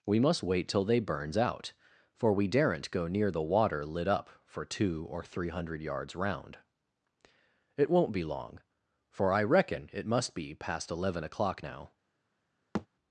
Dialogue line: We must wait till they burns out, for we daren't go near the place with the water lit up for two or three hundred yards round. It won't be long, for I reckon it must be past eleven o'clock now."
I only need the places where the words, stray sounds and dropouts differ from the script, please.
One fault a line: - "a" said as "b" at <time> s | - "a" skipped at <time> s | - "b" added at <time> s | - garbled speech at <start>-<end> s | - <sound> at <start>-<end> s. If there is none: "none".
- "place with the" skipped at 3.4 s
- thud at 12.7-12.9 s